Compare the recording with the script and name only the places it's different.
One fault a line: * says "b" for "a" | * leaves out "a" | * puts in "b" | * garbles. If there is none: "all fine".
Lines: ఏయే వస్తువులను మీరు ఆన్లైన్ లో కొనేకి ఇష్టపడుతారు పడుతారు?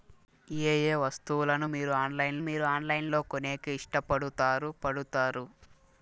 * puts in "మీరు ఆన్లైన్"